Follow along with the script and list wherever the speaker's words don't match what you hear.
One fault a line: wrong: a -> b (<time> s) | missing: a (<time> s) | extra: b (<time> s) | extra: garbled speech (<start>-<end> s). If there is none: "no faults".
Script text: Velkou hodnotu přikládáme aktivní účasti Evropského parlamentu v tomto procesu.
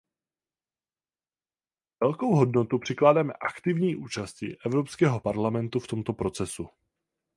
no faults